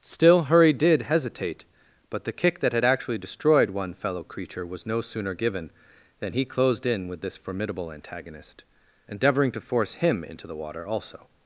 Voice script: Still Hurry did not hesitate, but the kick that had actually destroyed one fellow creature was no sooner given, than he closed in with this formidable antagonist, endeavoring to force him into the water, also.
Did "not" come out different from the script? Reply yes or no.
yes